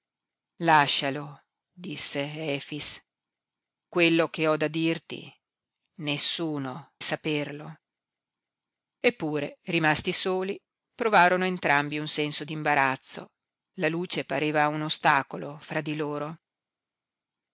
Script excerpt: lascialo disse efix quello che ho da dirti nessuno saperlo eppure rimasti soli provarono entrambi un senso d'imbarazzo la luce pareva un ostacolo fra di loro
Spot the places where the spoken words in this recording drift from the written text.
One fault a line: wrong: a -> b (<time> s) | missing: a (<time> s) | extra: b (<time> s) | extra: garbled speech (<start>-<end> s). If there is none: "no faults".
no faults